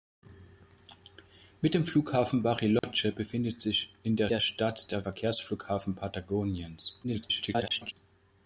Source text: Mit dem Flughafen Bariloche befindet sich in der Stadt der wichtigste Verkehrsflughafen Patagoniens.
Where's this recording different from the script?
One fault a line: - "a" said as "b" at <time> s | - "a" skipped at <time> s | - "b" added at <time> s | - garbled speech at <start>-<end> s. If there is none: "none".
- "der" added at 4.3 s
- "wichtigste" skipped at 5.1 s
- garbled speech at 7.0-7.9 s